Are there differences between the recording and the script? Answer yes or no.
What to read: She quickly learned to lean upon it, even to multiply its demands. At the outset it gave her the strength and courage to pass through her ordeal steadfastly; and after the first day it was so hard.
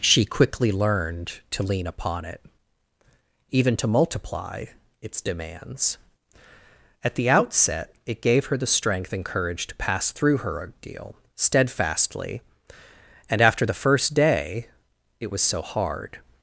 no